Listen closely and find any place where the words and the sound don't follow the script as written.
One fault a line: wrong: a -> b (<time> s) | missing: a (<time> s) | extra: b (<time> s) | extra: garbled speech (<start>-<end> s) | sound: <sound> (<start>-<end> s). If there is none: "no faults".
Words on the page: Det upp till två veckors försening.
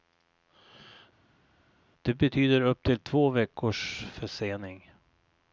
extra: betyder (2.1 s)